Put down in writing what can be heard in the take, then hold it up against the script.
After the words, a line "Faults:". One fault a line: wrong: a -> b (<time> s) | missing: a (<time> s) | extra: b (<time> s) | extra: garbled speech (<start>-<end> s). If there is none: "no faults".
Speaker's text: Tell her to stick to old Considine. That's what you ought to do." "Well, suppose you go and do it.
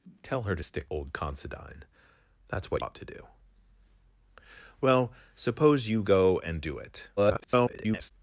Tell her to stick old Considine. That's what ought to do." "Well, suppose you go and do it. [garbled]
Faults:
missing: to (0.9 s)
missing: you (2.8 s)
extra: garbled speech (7.2-8.1 s)